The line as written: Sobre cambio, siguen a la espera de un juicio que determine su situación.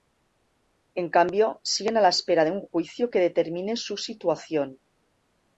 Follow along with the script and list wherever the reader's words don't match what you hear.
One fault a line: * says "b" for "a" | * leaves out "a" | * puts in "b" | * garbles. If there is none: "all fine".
* says "En" for "Sobre"